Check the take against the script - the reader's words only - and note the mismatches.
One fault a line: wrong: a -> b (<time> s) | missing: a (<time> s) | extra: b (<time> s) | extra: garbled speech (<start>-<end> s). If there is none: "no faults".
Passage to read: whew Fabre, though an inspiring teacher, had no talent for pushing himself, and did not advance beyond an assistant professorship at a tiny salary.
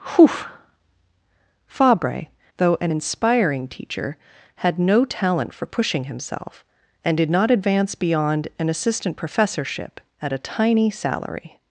no faults